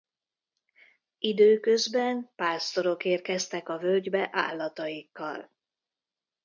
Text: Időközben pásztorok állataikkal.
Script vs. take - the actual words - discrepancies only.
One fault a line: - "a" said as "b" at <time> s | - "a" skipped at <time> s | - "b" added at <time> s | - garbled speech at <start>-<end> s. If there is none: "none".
- "érkeztek a völgybe" added at 3.0 s